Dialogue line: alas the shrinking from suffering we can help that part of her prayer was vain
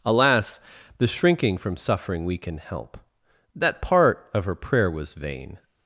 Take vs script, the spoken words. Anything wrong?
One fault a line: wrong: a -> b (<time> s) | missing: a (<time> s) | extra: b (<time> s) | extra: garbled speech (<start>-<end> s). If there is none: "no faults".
no faults